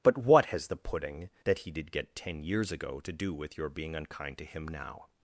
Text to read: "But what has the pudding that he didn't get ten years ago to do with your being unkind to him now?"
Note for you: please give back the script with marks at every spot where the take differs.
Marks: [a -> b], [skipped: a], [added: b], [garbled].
"But what has the pudding that he [didn't -> did] get ten years ago to do with your being unkind to him now?"